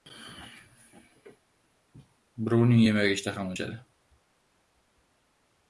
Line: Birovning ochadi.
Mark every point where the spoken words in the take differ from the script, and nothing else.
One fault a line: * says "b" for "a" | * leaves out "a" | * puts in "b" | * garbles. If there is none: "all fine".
* puts in "yemagi ishtahani"